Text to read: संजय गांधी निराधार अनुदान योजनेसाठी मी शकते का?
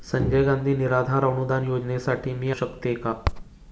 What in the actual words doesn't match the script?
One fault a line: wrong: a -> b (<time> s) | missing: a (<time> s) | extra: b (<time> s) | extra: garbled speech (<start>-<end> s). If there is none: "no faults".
no faults